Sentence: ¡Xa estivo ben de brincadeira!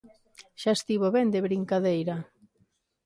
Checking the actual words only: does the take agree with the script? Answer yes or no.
yes